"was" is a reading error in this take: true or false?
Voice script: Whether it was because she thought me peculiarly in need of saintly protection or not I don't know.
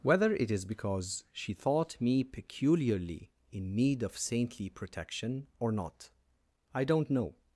true